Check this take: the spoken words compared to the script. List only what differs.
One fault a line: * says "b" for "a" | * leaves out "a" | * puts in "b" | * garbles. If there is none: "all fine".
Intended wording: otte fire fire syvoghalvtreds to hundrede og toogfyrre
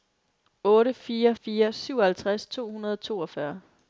all fine